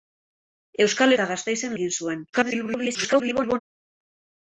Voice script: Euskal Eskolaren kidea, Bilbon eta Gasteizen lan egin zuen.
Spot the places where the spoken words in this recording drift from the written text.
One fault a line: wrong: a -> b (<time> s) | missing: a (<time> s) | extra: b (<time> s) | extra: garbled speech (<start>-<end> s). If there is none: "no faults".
missing: Eskolaren kidea Bilbon (1.1 s)
missing: lan (1.8 s)
extra: garbled speech (2.3-3.6 s)